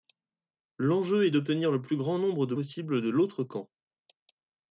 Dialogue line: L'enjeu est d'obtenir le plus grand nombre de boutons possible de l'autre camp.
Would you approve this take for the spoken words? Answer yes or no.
no